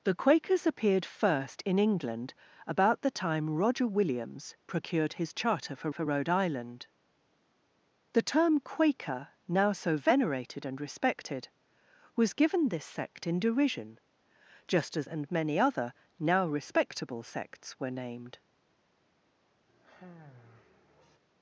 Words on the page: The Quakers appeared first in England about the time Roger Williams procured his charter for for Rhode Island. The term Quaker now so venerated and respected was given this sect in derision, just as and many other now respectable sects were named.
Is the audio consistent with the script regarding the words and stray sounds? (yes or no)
no